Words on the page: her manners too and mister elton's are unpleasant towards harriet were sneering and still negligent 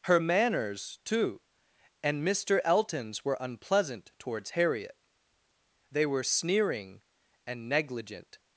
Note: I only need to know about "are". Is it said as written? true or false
false